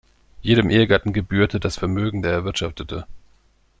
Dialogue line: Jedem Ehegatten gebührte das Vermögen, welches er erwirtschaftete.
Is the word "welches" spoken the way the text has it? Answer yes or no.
no